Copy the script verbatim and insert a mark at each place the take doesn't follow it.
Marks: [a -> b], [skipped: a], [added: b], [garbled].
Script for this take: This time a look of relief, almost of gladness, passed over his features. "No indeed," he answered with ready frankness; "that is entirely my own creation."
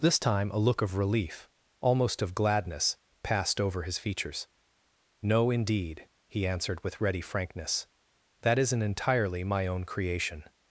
This time a look of relief, almost of gladness, passed over his features. "No indeed," he answered with ready frankness; "that [is -> isn't] entirely my own creation."